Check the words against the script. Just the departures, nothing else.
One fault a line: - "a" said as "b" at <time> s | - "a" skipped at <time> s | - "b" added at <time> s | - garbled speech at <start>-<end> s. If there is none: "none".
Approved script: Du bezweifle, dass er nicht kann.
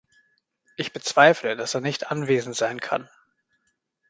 - "Du" said as "Ich" at 0.8 s
- "anwesend sein" added at 2.1 s